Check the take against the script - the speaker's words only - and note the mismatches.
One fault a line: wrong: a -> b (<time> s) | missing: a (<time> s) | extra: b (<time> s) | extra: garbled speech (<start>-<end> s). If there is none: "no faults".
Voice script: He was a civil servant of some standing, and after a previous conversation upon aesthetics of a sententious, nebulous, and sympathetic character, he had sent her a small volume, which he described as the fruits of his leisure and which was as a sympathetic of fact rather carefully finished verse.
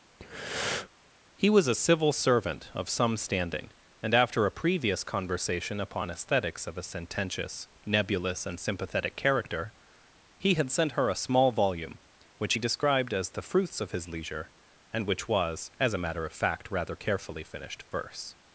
wrong: sympathetic -> matter (16.0 s)